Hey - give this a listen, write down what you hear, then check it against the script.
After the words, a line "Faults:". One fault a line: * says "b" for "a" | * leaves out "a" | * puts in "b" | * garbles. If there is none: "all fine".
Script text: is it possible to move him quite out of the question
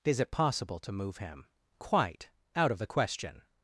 is it possible to move him quite out of the question
Faults:
all fine